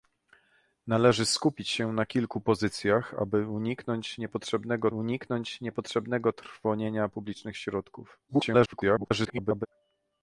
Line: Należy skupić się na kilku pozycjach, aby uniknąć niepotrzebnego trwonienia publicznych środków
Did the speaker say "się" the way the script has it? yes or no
yes